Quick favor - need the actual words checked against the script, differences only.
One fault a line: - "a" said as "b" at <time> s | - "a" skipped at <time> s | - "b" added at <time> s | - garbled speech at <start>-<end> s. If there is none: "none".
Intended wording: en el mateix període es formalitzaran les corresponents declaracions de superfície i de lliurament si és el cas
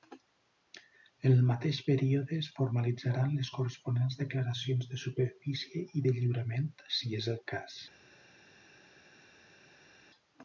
none